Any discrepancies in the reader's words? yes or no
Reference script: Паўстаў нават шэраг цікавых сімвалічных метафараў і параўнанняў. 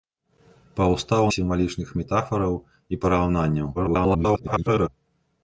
yes